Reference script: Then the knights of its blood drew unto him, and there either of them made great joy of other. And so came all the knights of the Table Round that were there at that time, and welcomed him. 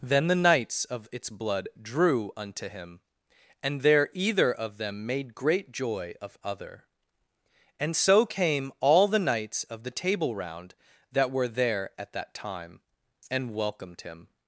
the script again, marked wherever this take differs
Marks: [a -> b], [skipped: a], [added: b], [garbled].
Then the knights of its blood drew unto him, and there either of them made great joy of other. And so came all the knights of the Table Round that were there at that time, and welcomed him.